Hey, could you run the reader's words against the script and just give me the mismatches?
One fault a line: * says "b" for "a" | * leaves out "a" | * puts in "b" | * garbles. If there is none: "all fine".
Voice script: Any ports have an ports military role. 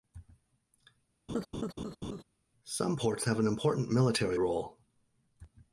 * says "Some" for "Any"
* says "important" for "ports"